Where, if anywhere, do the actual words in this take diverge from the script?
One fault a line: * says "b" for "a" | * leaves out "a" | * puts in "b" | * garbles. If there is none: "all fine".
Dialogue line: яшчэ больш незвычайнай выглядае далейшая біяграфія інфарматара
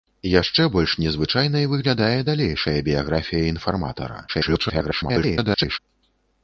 * garbles